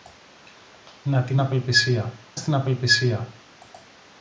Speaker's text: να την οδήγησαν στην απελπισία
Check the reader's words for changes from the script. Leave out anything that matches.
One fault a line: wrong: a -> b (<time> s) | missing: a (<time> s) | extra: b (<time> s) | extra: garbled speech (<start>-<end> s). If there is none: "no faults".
wrong: οδήγησαν -> απελπισία (1.4 s)